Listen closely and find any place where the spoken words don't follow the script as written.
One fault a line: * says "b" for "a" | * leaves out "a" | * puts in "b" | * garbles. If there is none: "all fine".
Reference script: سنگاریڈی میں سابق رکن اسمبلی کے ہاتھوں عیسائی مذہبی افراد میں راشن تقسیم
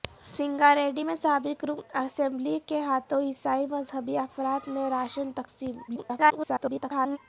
* garbles